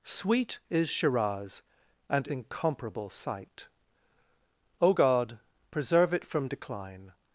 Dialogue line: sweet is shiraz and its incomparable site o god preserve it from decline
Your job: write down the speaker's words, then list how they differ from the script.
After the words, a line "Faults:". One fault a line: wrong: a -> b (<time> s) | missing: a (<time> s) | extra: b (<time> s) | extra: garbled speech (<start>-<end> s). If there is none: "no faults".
sweet is shiraz and incomparable site o god preserve it from decline
Faults:
missing: its (2.3 s)